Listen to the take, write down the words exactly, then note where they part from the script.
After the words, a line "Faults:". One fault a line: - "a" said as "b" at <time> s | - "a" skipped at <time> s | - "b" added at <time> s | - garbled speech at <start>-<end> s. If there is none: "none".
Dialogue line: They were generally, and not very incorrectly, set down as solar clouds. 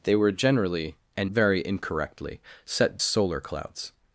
They were generally, and very incorrectly, set solar clouds.
Faults:
- "not" skipped at 1.3 s
- "down as" skipped at 3.0 s